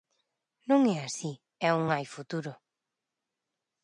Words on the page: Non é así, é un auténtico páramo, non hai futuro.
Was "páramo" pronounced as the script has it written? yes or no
no